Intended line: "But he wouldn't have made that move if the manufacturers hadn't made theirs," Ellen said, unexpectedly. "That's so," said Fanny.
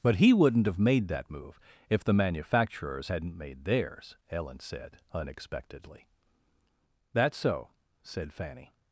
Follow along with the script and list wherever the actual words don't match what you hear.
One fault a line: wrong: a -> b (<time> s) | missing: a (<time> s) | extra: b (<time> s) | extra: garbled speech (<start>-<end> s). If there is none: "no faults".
no faults